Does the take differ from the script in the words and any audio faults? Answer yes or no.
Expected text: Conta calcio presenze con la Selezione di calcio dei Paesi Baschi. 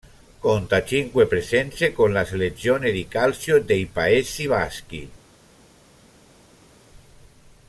yes